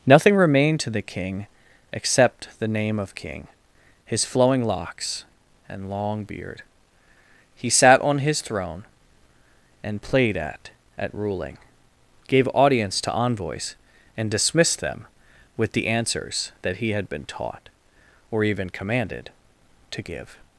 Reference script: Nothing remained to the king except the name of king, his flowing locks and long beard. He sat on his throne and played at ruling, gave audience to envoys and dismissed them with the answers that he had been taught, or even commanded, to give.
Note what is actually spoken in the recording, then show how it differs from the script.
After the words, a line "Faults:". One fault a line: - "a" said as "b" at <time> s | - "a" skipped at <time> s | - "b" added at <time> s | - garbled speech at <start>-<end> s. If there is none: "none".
Nothing remained to the king except the name of king, his flowing locks and long beard. He sat on his throne and played at at ruling, gave audience to envoys and dismissed them with the answers that he had been taught, or even commanded, to give.
Faults:
- "at" added at 11.0 s